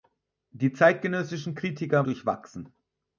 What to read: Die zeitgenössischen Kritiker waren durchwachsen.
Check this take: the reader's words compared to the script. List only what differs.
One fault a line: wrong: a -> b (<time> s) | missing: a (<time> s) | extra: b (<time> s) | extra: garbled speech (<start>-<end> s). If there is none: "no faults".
missing: waren (2.1 s)